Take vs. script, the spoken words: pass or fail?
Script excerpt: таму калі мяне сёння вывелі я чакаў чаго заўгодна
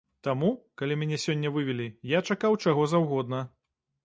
pass